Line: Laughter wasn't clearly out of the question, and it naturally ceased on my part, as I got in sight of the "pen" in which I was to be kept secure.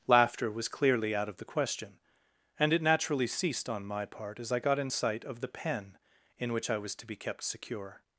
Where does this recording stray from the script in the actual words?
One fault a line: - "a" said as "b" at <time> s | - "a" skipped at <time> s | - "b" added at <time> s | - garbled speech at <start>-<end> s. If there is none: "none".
- "wasn't" said as "was" at 0.5 s